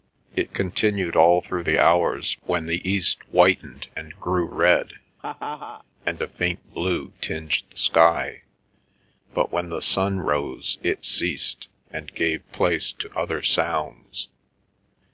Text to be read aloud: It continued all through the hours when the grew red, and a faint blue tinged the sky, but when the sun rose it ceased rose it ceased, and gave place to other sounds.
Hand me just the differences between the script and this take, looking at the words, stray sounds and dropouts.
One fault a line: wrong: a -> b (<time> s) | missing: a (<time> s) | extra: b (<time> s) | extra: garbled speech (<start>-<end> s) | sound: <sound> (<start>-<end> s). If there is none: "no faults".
extra: east whitened and (2.9 s)
sound: laugh (5.2-5.8 s)
missing: rose it ceased (11.7 s)